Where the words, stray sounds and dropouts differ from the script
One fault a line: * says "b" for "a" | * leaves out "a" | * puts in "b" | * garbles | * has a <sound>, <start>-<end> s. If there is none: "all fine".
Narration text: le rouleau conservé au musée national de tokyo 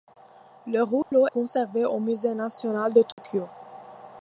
* has a dropout, 1.0-1.1 s
* has a dropout, 3.1-3.2 s